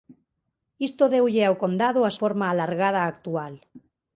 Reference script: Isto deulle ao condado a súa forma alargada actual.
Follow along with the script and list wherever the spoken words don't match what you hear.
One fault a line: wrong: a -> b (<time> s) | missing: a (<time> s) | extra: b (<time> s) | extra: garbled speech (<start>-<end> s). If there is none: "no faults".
missing: súa (2.1 s)